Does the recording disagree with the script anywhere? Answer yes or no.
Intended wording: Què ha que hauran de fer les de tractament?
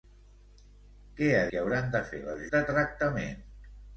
no